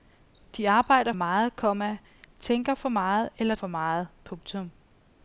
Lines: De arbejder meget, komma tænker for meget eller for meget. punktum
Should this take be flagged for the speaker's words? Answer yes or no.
no